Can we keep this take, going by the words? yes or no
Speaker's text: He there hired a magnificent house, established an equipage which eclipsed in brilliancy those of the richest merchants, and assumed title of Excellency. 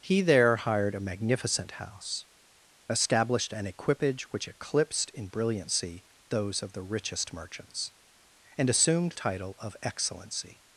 yes